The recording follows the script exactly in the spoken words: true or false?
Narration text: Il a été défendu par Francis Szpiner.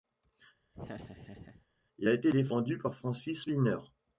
true